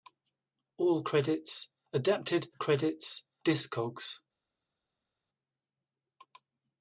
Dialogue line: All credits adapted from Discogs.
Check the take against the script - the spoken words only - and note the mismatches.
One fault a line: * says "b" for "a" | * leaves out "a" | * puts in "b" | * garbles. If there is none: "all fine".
* says "credits" for "from"